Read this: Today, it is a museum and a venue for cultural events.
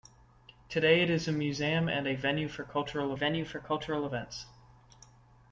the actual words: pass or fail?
fail